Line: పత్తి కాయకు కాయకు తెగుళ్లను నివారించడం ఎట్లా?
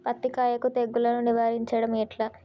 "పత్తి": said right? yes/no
yes